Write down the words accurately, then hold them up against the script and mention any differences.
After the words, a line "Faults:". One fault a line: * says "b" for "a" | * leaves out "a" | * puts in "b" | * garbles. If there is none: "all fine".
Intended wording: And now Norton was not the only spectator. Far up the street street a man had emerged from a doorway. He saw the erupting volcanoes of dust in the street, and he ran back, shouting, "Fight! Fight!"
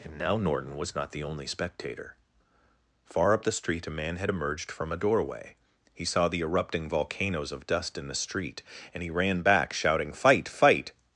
And now Norton was not the only spectator. Far up the street a man had emerged from a doorway. He saw the erupting volcanoes of dust in the street, and he ran back, shouting, "Fight! Fight!"
Faults:
* leaves out "street"